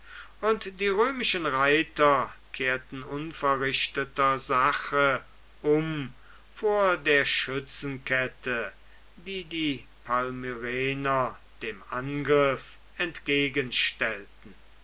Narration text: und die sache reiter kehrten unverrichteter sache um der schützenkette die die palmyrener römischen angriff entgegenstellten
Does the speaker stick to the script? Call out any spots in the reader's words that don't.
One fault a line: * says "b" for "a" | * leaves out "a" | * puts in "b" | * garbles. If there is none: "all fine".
* says "römischen" for "sache"
* puts in "vor"
* says "dem" for "römischen"